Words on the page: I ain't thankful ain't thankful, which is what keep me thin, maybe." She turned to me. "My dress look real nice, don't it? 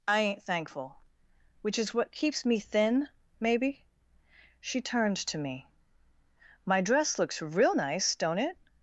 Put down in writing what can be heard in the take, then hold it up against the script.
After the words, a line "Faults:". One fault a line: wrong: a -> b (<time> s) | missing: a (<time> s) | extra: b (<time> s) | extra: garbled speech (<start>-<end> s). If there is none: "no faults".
I ain't thankful, which is what keeps me thin, maybe." She turned to me. "My dress looks real nice, don't it?
Faults:
missing: ain't thankful (1.0 s)
wrong: keep -> keeps (2.1 s)
wrong: look -> looks (7.2 s)